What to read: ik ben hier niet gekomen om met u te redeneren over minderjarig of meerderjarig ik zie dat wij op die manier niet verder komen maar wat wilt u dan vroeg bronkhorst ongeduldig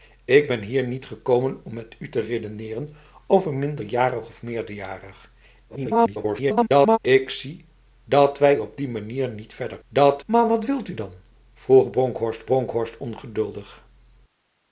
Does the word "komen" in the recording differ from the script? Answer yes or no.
yes